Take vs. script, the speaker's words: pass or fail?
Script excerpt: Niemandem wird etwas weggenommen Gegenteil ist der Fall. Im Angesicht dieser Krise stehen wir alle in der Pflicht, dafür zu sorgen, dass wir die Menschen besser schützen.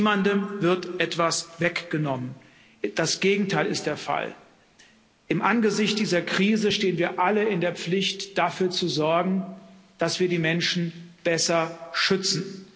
fail